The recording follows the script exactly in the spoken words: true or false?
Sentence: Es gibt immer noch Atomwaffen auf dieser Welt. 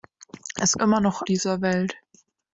false